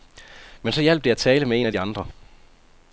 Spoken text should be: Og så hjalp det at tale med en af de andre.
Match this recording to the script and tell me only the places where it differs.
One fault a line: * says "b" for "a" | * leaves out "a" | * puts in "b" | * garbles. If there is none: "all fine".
* says "Men" for "Og"